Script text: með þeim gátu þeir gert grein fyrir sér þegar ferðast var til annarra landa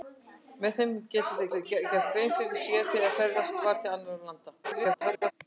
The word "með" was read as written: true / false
true